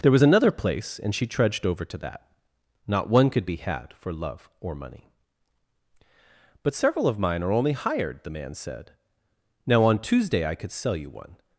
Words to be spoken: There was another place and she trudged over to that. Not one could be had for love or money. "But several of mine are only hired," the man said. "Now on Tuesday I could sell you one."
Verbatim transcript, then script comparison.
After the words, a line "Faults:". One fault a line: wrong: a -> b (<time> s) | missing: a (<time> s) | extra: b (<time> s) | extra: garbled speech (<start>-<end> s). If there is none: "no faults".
There was another place and she trudged over to that. Not one could be had for love or money. "But several of mine are only hired," the man said. "Now on Tuesday I could sell you one."
Faults:
no faults